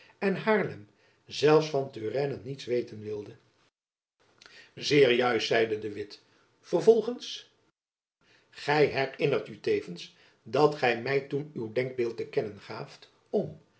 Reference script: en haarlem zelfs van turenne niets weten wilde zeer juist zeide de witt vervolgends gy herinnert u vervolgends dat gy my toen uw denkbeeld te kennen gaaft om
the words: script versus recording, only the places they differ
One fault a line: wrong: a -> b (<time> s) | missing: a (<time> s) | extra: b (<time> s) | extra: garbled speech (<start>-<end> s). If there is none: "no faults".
wrong: vervolgends -> tevens (9.6 s)